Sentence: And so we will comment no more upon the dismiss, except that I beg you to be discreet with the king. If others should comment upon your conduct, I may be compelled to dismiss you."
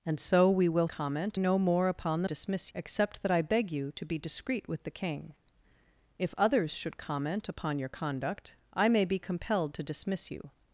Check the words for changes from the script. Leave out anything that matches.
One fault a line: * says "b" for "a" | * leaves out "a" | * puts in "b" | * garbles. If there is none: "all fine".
all fine